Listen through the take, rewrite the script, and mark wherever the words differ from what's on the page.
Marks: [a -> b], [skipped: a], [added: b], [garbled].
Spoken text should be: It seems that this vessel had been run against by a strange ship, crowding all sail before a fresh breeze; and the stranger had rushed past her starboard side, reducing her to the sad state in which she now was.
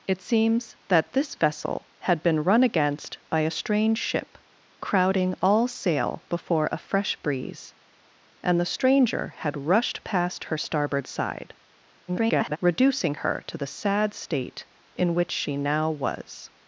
It seems that this vessel had been run against by a strange ship, crowding all sail before a fresh breeze; and the stranger had rushed past her starboard side, [garbled] reducing her to the sad state in which she now was.